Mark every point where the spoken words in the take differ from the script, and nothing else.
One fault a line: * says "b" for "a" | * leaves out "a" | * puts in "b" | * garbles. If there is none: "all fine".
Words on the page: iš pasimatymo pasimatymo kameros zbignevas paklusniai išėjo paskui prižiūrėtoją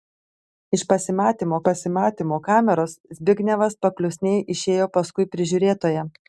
all fine